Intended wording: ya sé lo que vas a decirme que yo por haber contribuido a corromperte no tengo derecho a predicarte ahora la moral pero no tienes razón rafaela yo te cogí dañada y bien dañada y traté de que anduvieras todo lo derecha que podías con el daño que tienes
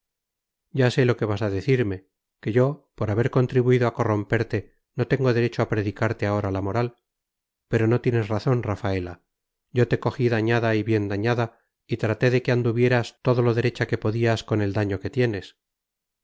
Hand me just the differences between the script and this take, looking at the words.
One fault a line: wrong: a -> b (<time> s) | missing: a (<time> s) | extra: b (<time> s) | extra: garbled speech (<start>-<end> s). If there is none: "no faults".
no faults